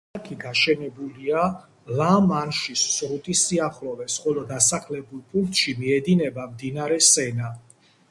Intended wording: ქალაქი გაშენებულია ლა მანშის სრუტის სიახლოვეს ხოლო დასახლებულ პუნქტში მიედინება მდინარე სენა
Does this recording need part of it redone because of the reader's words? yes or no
no